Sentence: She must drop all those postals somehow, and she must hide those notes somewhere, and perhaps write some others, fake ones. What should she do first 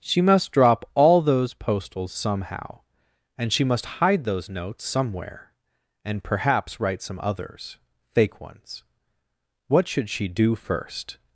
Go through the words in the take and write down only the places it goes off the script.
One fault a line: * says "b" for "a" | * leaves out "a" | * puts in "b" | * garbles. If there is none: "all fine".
all fine